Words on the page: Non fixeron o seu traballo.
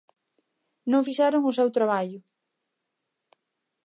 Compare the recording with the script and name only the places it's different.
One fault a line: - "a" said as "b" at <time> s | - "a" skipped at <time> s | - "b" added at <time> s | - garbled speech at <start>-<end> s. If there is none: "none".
none